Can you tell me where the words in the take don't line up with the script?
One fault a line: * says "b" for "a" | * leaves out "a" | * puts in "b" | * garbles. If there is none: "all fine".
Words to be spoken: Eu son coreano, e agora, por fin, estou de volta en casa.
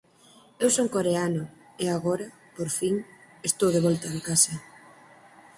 all fine